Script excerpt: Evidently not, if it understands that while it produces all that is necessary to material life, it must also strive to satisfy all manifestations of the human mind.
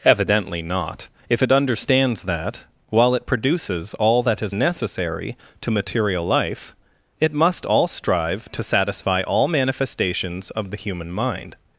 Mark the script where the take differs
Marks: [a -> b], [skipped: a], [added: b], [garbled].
Evidently not, if it understands that while it produces all that is necessary to material life, it must [also -> all] strive to satisfy all manifestations of the human mind.